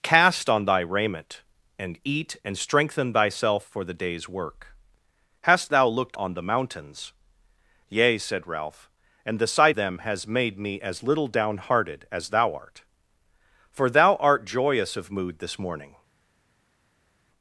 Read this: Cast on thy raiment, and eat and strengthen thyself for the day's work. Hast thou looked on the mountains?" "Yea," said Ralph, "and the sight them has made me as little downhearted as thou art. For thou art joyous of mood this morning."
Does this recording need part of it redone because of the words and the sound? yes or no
no